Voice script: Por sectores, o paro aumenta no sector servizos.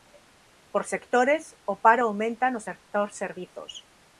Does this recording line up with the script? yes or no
yes